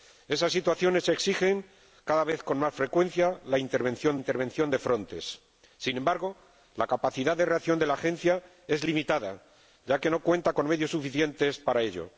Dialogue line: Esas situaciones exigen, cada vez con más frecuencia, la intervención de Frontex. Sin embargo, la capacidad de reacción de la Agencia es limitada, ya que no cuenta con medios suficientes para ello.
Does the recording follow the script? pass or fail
fail